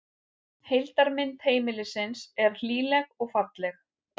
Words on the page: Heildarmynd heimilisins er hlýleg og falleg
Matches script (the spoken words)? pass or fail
pass